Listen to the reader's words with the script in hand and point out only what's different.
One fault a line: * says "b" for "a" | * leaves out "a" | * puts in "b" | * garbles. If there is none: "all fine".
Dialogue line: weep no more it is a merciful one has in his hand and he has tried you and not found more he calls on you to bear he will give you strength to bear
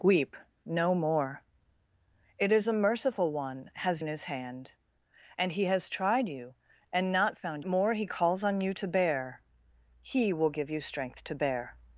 all fine